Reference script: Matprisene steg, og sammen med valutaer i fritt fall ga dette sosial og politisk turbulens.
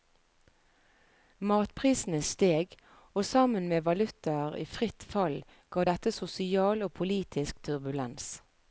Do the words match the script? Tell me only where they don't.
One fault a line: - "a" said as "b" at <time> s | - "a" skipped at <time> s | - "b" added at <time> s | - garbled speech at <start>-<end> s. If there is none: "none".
none